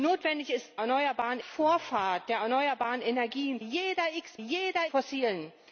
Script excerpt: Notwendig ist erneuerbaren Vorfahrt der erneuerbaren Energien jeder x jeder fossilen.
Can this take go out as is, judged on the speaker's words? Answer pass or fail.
pass